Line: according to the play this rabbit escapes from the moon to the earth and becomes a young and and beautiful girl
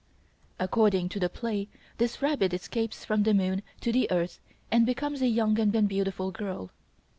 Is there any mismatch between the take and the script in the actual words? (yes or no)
no